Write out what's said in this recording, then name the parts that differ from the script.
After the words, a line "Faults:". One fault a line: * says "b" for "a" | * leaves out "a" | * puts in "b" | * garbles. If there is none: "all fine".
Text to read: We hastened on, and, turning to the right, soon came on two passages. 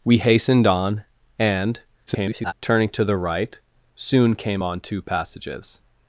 We hastened on, and, [garbled] turning to the right, soon came on two passages.
Faults:
* garbles